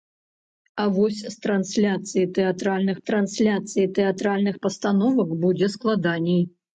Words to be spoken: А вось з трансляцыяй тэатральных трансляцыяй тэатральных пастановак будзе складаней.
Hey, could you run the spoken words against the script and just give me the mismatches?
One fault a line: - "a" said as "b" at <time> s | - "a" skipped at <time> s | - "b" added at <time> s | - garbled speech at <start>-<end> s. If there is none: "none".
none